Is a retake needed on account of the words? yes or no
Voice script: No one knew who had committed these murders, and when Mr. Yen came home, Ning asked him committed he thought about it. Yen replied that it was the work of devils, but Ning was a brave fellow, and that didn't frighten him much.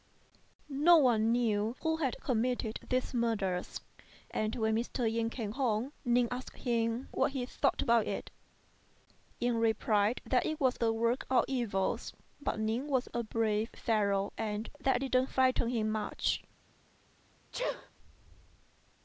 yes